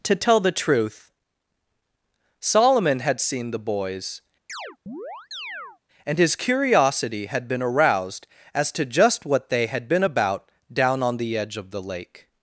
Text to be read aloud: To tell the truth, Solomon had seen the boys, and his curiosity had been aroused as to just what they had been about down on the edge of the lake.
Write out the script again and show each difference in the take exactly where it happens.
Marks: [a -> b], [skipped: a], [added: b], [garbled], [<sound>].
To tell the truth, Solomon had seen the boys, [chirp] and his curiosity had been aroused as to just what they had been about down on the edge of the lake.